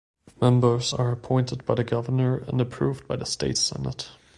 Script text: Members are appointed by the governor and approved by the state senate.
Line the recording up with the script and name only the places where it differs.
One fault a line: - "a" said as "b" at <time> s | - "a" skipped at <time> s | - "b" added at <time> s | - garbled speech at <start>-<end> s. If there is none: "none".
none